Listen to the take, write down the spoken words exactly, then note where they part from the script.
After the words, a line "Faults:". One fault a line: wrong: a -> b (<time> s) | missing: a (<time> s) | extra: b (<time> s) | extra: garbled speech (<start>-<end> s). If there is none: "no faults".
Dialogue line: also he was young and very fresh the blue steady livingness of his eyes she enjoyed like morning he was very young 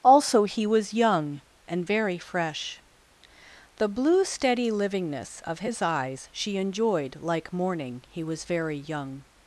also he was young and very fresh the blue steady livingness of his eyes she enjoyed like morning he was very young
Faults:
no faults